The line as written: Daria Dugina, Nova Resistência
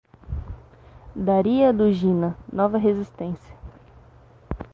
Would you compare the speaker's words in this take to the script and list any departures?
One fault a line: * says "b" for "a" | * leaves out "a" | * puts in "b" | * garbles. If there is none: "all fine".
all fine